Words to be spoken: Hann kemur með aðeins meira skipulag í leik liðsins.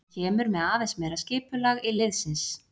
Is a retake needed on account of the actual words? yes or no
yes